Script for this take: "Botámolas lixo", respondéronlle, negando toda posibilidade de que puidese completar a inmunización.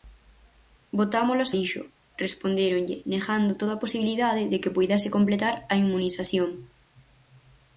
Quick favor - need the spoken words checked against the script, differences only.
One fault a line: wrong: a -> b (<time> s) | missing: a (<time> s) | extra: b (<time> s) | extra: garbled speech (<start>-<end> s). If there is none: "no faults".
no faults